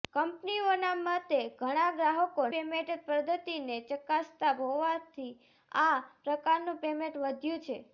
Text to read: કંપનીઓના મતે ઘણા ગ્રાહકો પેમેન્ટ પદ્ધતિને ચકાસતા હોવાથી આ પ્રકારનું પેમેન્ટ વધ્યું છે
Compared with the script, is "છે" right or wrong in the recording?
right